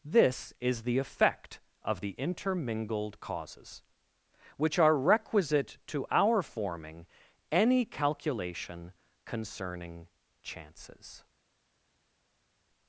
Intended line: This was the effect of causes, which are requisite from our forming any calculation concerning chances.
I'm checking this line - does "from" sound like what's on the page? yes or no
no